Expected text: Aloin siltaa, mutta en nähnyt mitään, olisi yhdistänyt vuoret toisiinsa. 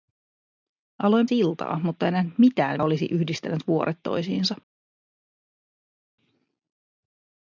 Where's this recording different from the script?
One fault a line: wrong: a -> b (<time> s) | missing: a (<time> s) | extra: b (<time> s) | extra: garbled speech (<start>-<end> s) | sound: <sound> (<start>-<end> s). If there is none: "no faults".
no faults